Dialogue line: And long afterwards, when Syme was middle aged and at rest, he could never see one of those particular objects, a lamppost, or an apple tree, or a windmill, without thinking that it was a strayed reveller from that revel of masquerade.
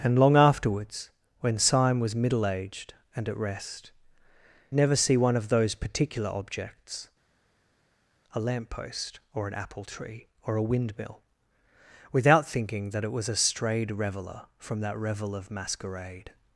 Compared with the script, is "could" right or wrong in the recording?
wrong